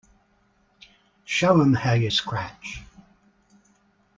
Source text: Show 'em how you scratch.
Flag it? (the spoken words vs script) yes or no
no